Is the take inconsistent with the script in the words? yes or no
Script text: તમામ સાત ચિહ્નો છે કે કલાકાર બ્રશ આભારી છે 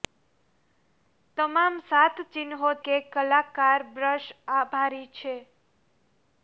yes